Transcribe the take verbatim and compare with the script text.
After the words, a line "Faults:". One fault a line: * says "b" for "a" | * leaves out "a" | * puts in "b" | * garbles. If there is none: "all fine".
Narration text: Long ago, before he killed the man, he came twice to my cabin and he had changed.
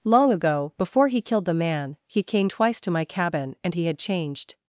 Long ago, before he killed the man, he came twice to my cabin and he had changed.
Faults:
all fine